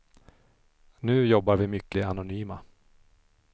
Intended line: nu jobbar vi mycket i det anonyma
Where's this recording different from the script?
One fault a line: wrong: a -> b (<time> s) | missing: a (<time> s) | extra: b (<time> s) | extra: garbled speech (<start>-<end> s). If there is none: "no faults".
missing: i (2.0 s)